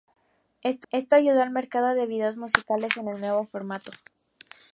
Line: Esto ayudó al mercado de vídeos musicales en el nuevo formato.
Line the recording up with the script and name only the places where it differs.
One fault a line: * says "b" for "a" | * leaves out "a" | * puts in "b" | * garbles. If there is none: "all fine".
* puts in "esto"